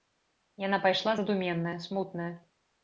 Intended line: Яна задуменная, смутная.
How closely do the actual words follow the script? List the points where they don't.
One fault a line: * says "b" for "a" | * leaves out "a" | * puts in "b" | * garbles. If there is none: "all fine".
* puts in "пайшла"